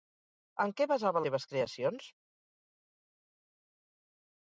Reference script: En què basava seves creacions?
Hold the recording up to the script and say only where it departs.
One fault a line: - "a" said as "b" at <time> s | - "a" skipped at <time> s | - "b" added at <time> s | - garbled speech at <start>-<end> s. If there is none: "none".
none